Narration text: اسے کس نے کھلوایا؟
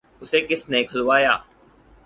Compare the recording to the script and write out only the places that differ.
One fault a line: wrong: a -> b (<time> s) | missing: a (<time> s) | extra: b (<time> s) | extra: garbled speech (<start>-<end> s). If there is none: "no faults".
no faults